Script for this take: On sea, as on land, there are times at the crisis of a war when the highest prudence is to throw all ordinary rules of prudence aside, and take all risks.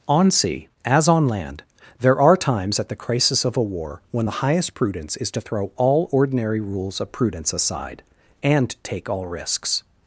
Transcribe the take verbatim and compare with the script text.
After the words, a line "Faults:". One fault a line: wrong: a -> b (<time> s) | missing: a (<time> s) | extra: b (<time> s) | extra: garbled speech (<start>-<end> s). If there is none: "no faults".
On sea, as on land, there are times at the crisis of a war when the highest prudence is to throw all ordinary rules of prudence aside, and take all risks.
Faults:
no faults